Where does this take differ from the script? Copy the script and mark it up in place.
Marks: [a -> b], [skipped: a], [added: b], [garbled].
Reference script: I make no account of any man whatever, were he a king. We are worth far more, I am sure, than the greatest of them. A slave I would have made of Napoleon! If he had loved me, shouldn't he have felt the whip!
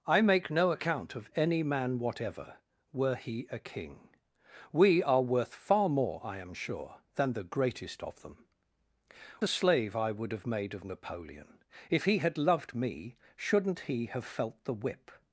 I make no account of any man whatever, were he a king. We are worth far more, I am sure, than the greatest of them. A slave I would have made of Napoleon! If he had loved me, shouldn't he have felt the whip!